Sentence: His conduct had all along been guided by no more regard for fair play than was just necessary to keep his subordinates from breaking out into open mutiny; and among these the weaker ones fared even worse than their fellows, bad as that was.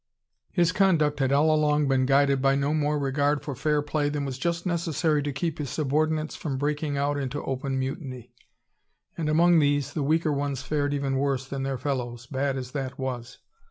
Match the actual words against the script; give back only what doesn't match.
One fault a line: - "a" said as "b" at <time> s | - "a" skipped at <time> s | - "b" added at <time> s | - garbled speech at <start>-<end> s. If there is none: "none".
none